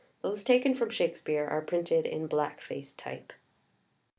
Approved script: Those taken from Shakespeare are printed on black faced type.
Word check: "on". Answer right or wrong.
wrong